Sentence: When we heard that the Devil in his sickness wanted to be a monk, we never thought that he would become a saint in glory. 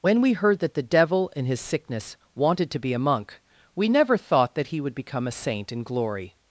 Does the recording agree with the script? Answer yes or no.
yes